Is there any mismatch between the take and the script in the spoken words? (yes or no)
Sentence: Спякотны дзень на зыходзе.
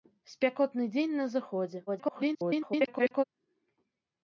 yes